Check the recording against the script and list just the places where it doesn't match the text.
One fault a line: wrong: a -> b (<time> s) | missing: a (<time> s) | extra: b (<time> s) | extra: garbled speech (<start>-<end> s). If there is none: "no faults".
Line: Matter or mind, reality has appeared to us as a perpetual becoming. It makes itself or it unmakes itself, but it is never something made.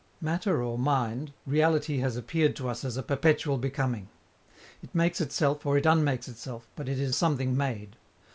missing: never (7.1 s)